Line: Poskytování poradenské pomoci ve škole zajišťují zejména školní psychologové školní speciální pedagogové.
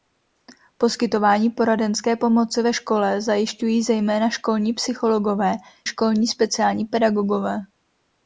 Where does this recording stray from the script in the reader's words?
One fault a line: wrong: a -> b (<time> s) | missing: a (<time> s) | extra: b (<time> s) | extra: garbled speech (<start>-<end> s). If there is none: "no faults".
no faults